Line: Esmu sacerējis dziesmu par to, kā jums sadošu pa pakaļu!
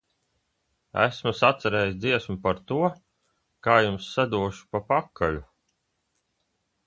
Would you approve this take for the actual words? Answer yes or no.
yes